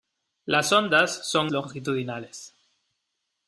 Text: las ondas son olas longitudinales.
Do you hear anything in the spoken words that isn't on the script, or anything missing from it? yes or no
yes